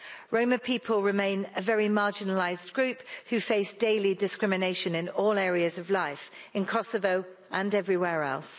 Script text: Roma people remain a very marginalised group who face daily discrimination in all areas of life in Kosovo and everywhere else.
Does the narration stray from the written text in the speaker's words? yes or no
no